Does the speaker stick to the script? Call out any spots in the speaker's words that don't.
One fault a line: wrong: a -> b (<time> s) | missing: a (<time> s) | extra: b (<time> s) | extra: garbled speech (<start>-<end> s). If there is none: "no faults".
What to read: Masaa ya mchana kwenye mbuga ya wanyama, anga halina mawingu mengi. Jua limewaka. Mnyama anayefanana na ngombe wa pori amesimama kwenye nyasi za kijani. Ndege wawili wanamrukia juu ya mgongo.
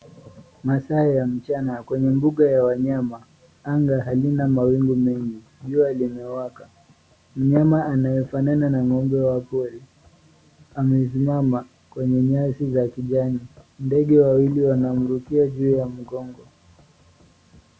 no faults